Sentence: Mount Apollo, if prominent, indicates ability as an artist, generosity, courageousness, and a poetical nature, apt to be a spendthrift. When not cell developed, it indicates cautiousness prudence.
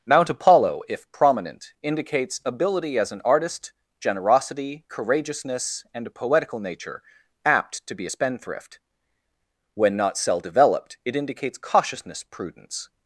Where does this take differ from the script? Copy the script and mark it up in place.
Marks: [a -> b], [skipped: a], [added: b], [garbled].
Mount Apollo, if prominent, indicates ability as an artist, generosity, courageousness, and a poetical nature, apt to be a spendthrift. When not cell developed, it indicates cautiousness prudence.